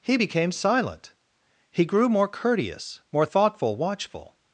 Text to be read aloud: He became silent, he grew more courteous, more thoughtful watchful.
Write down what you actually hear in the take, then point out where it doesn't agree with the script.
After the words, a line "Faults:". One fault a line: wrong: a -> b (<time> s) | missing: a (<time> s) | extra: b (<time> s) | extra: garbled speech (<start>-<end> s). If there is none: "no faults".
He became silent, he grew more courteous, more thoughtful watchful.
Faults:
no faults